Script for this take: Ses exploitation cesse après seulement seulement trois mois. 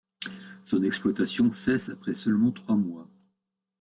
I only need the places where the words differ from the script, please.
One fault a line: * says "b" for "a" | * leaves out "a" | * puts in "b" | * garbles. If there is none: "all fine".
* says "Son" for "Ses"
* leaves out "seulement"